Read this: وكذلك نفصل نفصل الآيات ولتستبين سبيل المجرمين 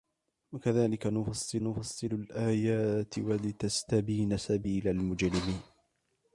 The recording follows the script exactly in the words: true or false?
true